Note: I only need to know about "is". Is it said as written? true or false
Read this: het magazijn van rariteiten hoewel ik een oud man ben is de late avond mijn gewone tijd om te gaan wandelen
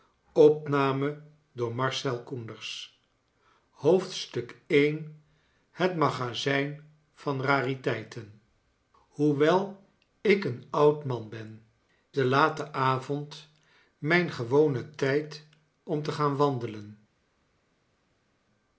false